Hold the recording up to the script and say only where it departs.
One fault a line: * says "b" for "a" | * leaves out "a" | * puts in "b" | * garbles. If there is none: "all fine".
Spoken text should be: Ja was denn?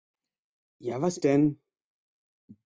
all fine